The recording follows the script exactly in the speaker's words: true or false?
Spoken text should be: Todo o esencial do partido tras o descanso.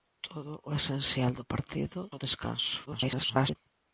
false